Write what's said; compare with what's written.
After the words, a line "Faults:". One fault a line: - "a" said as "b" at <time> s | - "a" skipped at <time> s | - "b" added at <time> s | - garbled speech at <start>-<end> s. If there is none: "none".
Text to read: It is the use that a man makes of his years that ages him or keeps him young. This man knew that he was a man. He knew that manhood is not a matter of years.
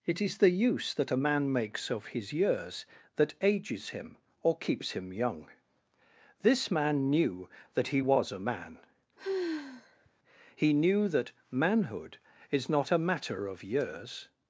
It is the use that a man makes of his years that ages him or keeps him young. This man knew that he was a man. He knew that manhood is not a matter of years.
Faults:
none